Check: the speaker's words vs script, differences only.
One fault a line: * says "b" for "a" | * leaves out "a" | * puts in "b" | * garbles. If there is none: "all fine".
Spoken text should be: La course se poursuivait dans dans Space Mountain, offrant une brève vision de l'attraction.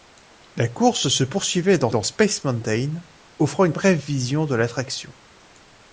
all fine